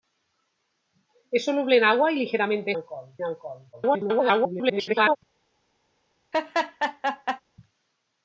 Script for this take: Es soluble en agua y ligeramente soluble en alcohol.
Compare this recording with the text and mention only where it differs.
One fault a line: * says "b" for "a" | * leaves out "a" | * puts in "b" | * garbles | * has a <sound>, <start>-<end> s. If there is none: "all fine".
* says "alcohol" for "soluble"
* garbles
* has a laugh, 6.3-7.4 s